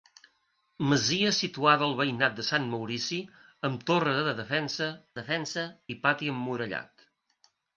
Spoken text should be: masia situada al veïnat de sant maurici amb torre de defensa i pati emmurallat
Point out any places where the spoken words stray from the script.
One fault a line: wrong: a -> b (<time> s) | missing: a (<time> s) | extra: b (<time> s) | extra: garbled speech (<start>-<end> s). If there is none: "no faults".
extra: defensa (5.2 s)